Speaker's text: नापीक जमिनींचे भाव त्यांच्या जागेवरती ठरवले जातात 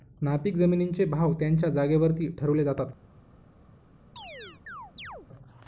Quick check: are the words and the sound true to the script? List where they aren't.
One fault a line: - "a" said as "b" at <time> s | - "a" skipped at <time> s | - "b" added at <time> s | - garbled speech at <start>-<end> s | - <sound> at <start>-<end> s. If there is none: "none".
- chirp at 4.2-5.3 s